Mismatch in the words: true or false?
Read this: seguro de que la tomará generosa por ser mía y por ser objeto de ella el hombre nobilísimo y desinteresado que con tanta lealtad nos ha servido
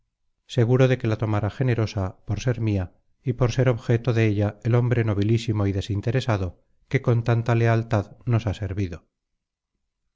false